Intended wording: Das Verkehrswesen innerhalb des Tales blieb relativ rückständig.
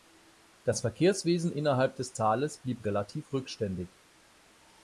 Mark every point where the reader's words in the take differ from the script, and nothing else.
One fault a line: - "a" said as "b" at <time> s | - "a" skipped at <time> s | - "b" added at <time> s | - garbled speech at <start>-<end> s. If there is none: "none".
none